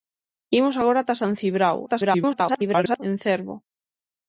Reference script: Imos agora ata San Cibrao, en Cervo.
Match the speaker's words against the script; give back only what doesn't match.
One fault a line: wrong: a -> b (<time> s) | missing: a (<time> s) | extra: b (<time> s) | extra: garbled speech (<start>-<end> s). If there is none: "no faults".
extra: garbled speech (1.9-3.0 s)